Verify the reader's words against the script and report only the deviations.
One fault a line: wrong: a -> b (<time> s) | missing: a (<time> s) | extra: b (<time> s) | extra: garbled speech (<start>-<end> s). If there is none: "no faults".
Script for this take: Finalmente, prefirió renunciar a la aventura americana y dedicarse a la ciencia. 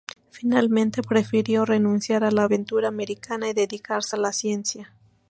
no faults